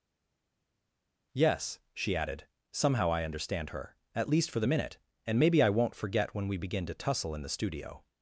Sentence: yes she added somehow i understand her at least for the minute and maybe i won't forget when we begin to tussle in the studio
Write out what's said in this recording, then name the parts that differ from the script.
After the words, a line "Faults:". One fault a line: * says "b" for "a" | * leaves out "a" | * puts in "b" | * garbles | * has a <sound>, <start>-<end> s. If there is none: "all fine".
yes she added somehow i understand her at least for the minute and maybe i won't forget when we begin to tussle in the studio
Faults:
all fine